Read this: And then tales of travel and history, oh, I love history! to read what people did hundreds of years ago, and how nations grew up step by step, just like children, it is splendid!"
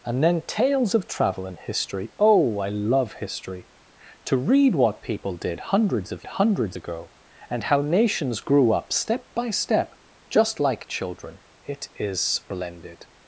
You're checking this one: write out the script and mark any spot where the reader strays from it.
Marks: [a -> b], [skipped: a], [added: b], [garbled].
And then tales of travel and history, oh, I love history! to read what people did hundreds of [years -> hundreds] ago, and how nations grew up step by step, just like children, it is splendid!"